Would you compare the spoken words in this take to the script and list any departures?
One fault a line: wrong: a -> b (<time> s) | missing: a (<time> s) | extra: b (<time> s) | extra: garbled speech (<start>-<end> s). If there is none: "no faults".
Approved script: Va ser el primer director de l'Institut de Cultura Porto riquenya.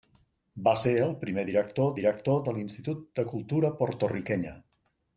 extra: director (2.0 s)